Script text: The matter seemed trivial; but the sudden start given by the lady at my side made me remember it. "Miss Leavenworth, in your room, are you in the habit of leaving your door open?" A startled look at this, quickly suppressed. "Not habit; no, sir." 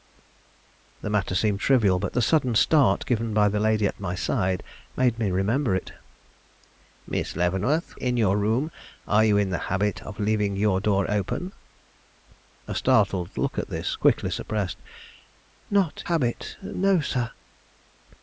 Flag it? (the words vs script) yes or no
no